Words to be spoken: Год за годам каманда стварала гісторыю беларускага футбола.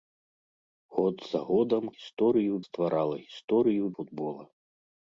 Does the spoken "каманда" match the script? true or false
false